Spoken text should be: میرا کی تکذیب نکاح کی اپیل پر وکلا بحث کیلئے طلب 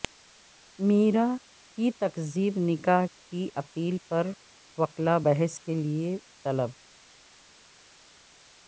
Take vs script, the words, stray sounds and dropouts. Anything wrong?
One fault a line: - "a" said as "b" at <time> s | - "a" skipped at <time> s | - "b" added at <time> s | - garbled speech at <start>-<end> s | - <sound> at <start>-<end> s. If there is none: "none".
none